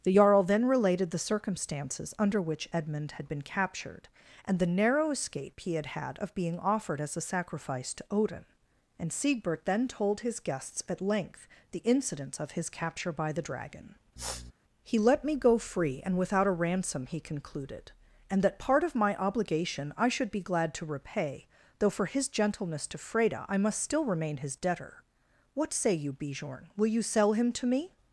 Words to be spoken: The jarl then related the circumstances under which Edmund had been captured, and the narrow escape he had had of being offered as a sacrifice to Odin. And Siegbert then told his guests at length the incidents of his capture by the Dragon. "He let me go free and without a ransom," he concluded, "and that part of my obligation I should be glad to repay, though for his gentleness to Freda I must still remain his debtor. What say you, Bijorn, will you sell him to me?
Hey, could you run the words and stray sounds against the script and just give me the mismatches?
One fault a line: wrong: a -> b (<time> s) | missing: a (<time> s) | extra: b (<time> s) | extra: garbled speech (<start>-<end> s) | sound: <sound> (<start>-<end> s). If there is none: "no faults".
sound: sniff (14.2-14.5 s)